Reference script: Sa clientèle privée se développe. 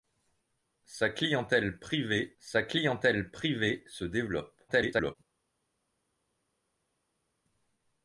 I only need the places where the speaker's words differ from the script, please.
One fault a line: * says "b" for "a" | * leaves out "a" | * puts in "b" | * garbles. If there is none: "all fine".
* puts in "sa clientèle privée"
* garbles